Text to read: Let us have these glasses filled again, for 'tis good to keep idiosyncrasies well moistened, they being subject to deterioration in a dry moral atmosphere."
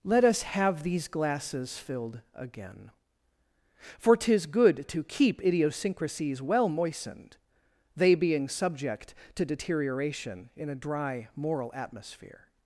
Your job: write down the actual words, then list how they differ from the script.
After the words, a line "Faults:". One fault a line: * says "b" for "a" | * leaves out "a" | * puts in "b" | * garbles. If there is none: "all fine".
Let us have these glasses filled again, for 'tis good to keep idiosyncrasies well moistened, they being subject to deterioration in a dry moral atmosphere."
Faults:
all fine